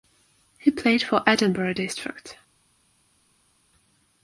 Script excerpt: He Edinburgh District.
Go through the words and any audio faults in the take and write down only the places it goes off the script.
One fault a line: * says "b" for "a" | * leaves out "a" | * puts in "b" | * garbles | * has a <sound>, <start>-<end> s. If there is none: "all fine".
* puts in "played for"